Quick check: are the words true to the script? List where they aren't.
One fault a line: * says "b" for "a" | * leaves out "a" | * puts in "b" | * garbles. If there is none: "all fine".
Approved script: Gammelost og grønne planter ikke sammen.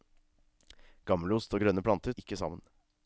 all fine